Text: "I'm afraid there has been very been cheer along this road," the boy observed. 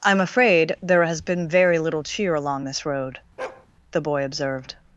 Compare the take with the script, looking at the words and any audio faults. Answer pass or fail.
fail